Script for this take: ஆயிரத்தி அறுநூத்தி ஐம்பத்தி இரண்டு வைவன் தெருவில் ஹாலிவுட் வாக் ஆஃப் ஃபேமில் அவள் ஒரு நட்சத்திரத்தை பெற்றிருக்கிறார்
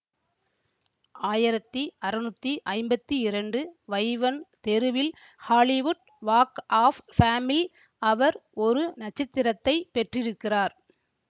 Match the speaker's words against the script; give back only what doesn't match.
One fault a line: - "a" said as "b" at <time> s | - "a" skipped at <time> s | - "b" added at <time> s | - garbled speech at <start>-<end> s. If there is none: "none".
- "அவள்" said as "அவர்" at 8.0 s